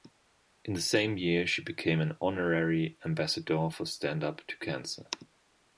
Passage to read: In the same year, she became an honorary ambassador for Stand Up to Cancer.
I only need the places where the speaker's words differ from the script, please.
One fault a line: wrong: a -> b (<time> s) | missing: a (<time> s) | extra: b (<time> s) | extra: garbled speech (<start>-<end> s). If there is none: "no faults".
no faults